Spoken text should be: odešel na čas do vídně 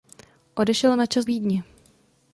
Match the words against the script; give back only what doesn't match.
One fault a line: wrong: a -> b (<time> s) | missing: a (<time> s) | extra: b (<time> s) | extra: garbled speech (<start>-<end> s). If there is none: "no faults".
missing: do (1.2 s)